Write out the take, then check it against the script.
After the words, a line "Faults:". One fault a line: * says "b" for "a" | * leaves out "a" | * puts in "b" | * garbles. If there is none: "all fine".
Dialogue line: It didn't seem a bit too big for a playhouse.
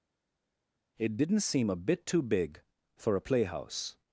It didn't seem a bit too big for a playhouse.
Faults:
all fine